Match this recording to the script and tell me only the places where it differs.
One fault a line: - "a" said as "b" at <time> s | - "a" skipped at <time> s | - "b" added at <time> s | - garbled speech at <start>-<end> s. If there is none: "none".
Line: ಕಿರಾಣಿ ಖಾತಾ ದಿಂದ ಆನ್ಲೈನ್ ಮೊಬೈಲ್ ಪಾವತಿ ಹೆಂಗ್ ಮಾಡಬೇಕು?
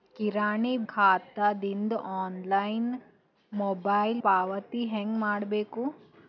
none